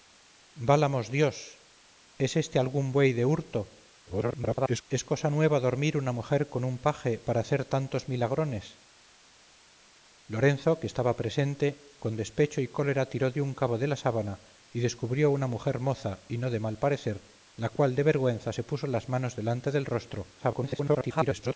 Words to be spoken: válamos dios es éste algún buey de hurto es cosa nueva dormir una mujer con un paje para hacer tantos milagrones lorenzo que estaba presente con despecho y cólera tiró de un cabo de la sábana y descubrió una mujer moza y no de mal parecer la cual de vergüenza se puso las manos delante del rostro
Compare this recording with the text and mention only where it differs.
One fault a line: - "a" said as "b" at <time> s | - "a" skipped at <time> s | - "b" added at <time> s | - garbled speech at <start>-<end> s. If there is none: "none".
- garbled speech at 4.1-4.8 s
- garbled speech at 20.4-21.6 s